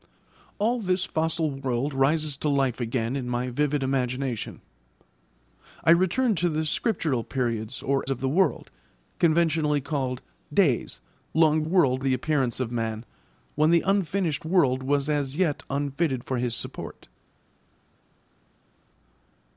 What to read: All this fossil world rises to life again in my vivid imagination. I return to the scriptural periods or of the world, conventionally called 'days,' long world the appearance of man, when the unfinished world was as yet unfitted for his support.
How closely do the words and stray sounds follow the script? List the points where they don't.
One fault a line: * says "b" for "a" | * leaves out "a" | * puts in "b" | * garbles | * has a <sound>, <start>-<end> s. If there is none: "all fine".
all fine